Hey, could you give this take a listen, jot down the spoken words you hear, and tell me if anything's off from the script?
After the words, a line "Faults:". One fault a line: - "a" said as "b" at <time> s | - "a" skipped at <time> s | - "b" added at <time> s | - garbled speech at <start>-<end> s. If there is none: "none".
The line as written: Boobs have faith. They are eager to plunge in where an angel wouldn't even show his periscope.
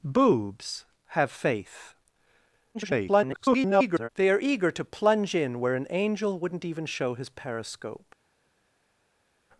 Boobs have faith. [garbled] They are eager to plunge in where an angel wouldn't even show his periscope.
Faults:
- garbled speech at 2.7-4.1 s